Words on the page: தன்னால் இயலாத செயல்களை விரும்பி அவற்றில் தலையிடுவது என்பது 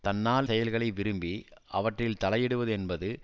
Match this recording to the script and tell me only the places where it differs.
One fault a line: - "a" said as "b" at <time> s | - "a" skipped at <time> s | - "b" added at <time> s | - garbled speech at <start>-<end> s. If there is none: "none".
- "இயலாத" skipped at 0.5 s